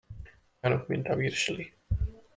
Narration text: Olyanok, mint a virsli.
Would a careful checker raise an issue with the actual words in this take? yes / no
no